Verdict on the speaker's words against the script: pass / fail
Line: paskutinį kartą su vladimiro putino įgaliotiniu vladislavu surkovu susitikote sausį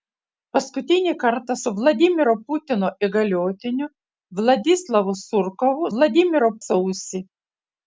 fail